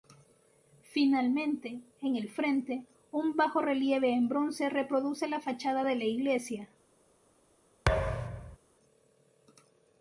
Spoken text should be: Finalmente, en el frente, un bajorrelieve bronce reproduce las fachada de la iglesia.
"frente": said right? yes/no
yes